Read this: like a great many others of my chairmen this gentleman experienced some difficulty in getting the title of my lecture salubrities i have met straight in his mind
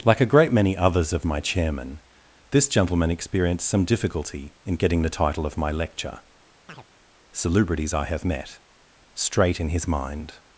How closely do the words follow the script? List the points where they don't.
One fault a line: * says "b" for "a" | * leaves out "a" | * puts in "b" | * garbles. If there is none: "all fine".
all fine